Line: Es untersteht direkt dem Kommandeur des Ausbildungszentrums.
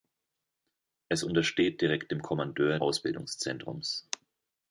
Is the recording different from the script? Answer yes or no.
yes